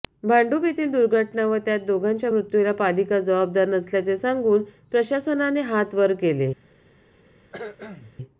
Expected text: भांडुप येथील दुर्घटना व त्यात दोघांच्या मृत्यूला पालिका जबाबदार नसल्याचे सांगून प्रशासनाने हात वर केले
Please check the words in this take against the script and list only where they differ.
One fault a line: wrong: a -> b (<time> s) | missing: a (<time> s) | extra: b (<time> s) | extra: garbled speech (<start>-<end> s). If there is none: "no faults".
no faults